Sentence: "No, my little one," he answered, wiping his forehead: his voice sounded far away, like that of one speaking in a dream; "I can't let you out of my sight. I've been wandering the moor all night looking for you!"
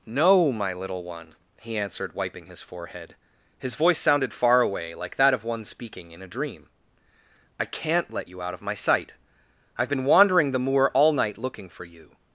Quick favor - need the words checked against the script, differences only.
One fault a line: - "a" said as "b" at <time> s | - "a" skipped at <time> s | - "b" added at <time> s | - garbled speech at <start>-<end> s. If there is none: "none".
none